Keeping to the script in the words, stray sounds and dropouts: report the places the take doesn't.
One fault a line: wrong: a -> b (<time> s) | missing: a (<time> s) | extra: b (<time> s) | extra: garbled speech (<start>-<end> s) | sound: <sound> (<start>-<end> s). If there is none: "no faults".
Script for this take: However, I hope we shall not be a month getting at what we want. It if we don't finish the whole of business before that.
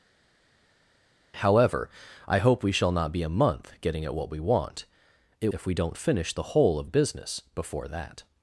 no faults